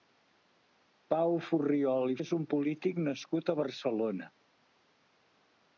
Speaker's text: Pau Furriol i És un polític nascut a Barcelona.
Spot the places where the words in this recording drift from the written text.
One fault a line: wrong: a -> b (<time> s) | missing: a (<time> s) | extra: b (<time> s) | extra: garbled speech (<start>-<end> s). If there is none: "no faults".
no faults